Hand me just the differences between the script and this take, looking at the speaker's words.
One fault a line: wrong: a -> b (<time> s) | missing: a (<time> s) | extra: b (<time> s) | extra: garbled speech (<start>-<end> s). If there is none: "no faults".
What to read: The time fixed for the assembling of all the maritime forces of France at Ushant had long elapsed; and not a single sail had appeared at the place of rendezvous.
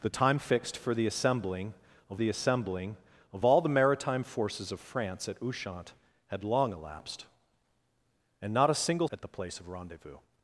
extra: the assembling of (2.2 s)
missing: sail had appeared (9.1 s)